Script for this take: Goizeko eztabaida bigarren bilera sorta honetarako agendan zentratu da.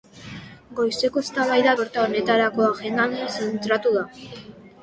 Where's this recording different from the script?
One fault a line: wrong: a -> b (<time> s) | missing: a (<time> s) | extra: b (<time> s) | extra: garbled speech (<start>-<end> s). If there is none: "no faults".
missing: bigarren bilera (1.8 s)